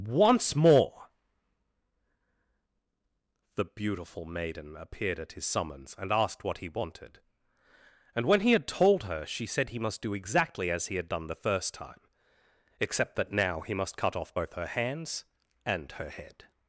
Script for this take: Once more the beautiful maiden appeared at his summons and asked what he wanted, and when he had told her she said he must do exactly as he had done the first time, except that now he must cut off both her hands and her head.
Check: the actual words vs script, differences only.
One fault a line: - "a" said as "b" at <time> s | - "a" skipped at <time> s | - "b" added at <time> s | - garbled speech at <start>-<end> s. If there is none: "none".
none